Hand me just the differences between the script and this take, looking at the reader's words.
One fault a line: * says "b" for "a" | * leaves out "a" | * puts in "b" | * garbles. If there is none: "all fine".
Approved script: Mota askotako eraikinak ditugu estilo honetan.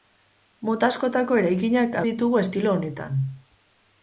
all fine